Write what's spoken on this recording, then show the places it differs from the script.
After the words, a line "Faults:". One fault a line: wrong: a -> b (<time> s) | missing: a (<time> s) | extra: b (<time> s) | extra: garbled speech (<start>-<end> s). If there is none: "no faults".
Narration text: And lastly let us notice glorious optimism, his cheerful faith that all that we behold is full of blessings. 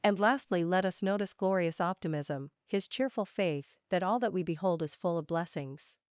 And lastly let us notice glorious optimism, his cheerful faith that all that we behold is full of blessings.
Faults:
no faults